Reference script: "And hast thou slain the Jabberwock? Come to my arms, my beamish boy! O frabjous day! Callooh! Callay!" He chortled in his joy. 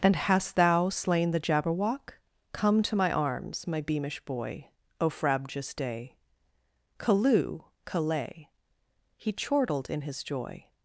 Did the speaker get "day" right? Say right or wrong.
right